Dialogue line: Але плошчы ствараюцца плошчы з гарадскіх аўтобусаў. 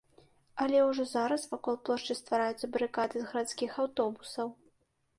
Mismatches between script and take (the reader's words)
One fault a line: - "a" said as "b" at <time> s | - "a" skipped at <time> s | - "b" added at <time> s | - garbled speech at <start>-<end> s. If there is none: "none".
- "ўжо зараз вакол" added at 0.9 s
- "плошчы" said as "барыкады" at 2.8 s